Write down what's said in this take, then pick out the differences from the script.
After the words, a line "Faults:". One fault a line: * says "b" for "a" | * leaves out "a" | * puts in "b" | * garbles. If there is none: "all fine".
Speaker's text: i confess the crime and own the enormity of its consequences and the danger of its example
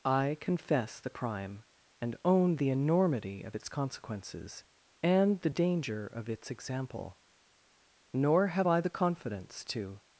i confess the crime and own the enormity of its consequences and the danger of its example nor have i the confidence to
Faults:
* puts in "nor have i the confidence to"